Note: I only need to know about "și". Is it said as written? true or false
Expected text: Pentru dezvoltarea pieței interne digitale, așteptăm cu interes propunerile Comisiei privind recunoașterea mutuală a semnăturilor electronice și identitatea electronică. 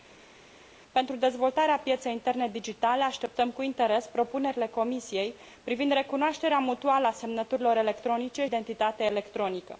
false